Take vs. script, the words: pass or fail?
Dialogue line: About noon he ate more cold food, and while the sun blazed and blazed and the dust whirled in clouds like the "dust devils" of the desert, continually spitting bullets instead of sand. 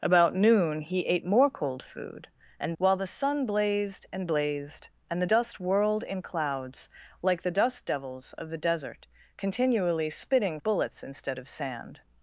pass